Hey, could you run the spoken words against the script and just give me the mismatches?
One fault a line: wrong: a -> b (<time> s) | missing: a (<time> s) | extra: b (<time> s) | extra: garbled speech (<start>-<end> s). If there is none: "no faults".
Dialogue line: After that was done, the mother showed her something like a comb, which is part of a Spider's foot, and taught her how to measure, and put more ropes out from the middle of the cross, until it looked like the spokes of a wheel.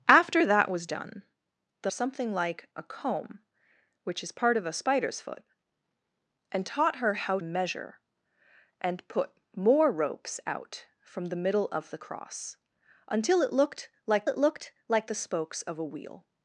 missing: mother showed her (1.9 s)
missing: to (7.4 s)
extra: it looked like (14.3 s)